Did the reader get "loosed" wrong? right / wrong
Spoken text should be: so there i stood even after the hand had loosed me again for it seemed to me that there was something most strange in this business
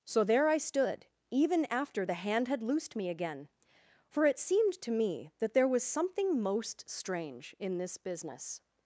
right